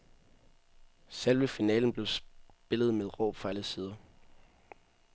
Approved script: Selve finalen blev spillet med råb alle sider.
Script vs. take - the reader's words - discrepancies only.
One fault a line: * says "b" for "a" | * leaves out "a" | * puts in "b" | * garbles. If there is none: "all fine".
* puts in "fra"